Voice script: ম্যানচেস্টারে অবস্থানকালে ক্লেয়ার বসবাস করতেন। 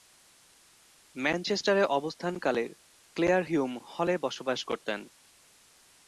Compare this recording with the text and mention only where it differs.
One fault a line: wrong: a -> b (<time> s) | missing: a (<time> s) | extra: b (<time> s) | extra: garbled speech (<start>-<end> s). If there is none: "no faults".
extra: হিউম হলে (3.4 s)